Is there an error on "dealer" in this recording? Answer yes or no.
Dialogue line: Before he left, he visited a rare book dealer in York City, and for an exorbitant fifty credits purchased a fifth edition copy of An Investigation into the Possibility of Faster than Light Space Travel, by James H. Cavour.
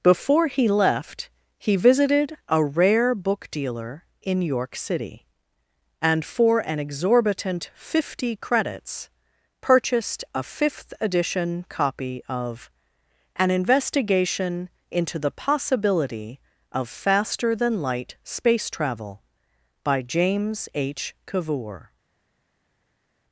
no